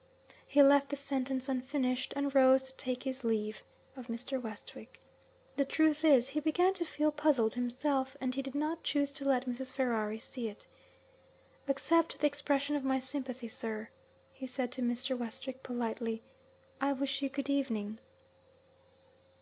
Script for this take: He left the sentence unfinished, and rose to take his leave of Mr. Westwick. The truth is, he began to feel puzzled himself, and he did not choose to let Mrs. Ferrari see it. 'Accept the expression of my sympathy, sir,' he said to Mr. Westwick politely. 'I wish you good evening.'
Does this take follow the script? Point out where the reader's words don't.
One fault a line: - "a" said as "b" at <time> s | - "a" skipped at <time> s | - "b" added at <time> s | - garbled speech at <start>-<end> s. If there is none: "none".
none